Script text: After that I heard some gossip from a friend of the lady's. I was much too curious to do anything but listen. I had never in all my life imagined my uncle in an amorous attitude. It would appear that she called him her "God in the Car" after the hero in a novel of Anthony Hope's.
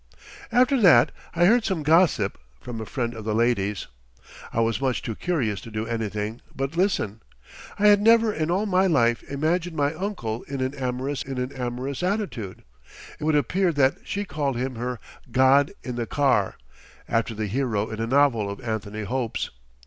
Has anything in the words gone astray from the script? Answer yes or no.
yes